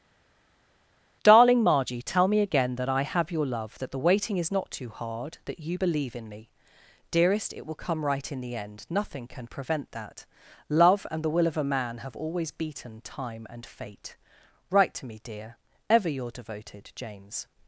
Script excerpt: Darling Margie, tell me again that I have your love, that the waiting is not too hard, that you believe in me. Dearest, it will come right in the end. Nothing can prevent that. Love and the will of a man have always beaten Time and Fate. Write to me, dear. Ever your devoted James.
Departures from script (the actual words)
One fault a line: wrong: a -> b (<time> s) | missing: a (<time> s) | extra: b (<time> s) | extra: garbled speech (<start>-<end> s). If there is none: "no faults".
no faults